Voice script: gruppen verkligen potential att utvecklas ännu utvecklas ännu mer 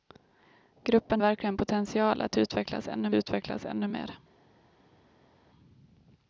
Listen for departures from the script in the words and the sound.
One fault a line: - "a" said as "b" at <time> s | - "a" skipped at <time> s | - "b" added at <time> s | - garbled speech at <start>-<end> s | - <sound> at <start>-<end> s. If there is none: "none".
none